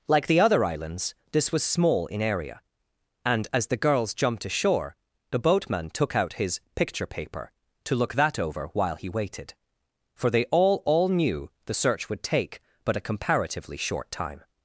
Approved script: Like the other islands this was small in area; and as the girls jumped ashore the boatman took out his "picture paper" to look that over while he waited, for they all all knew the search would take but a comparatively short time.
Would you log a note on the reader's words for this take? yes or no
no